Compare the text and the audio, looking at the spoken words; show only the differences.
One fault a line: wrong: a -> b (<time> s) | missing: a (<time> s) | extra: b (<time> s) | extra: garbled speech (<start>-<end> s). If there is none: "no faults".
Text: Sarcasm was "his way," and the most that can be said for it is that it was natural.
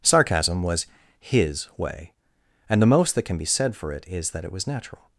no faults